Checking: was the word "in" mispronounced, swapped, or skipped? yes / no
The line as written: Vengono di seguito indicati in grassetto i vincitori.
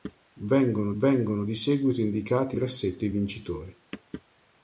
yes